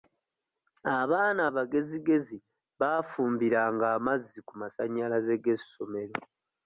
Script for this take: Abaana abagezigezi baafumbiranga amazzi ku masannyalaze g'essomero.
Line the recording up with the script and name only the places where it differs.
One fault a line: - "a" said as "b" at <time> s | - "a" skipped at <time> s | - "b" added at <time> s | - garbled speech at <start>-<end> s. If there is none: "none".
none